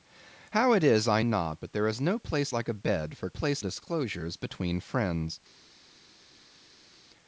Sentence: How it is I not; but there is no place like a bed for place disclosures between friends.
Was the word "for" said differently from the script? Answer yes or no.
no